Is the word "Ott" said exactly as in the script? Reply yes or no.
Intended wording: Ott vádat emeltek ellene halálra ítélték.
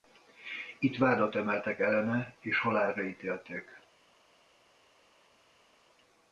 no